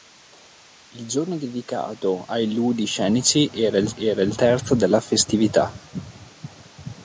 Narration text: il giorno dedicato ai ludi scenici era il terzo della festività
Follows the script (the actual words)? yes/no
no